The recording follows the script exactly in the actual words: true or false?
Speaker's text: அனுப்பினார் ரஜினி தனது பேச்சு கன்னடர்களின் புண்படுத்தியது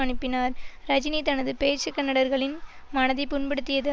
false